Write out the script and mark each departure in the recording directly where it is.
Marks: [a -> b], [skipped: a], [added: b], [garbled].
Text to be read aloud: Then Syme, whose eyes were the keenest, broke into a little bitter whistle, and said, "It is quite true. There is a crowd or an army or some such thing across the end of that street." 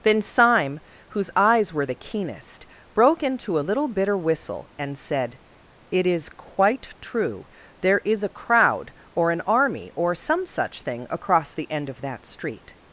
Then Syme, whose eyes were the keenest, broke into a little bitter whistle, and said, "It is quite true. There is a crowd or an army or some such thing across the end of that street."